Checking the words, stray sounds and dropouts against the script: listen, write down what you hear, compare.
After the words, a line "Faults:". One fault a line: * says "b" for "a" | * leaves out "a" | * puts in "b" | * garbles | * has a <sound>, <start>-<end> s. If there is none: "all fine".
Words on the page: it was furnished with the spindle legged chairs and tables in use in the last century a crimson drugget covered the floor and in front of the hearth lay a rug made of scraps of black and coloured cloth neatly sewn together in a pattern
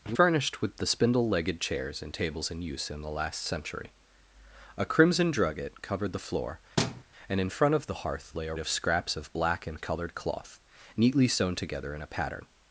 it furnished with the spindle legged chairs and tables in use in the last century a crimson drugget covered the floor and in front of the hearth lay a of scraps of black and coloured cloth neatly sewn together in a pattern
Faults:
* leaves out "was"
* has a thud, 6.8-7.0 s
* leaves out "rug made"